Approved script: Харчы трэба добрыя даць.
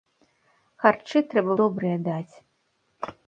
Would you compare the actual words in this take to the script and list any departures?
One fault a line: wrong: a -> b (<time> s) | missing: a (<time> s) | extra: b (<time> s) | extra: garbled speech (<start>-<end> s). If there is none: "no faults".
no faults